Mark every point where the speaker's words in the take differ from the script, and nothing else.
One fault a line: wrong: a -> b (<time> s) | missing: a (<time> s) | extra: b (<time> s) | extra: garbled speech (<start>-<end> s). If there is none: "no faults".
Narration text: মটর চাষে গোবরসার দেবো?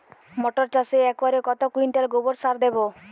extra: একরে কত কুইন্টাল (1.1 s)